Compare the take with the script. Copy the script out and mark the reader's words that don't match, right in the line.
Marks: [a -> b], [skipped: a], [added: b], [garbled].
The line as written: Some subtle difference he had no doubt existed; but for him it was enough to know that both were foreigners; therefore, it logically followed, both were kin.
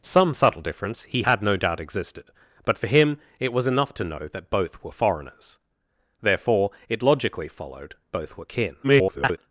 Some subtle difference he had no doubt existed; but for him it was enough to know that both were foreigners; therefore, it logically followed, both were kin. [garbled]